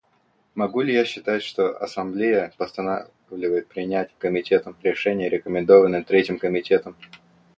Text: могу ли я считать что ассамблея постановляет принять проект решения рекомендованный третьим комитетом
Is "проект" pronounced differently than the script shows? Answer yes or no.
yes